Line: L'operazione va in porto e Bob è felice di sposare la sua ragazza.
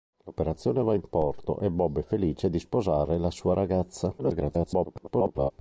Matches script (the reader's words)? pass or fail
fail